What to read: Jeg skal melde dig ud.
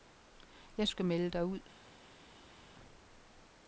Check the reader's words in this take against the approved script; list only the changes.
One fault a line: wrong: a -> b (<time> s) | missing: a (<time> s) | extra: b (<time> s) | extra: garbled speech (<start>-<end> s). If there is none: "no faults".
no faults